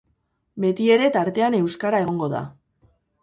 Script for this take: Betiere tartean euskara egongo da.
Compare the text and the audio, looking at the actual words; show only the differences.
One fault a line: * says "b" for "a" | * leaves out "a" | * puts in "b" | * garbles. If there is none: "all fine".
all fine